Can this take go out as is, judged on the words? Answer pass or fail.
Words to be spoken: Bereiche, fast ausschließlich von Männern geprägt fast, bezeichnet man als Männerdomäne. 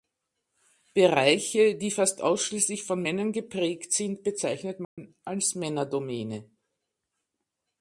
fail